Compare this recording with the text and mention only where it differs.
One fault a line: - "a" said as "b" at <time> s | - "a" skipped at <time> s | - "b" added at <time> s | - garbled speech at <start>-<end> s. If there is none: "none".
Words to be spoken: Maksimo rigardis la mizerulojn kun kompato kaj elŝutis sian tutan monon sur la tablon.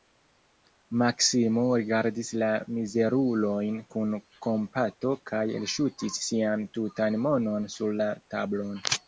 none